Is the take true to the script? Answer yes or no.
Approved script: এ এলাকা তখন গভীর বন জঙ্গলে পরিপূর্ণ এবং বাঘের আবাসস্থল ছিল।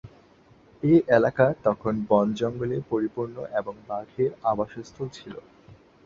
no